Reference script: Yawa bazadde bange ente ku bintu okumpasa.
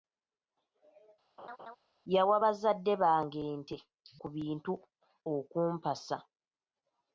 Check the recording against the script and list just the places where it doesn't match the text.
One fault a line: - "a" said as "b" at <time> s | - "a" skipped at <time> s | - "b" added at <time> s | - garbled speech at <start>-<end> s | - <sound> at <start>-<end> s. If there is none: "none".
- laugh at 1.4-1.8 s